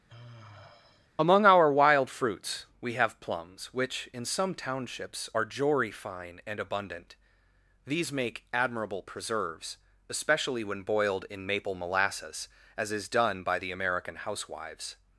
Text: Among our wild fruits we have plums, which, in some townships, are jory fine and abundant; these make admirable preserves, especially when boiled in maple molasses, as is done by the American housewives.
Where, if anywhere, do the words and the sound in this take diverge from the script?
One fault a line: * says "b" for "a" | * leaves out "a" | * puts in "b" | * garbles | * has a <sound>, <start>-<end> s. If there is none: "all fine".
* has a sigh, 0.1-1.1 s